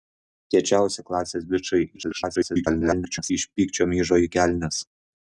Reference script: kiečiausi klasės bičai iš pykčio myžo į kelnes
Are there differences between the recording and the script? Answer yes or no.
yes